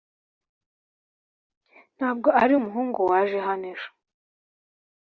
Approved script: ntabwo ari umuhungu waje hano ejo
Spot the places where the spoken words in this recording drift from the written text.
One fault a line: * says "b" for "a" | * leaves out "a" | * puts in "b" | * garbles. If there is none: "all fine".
all fine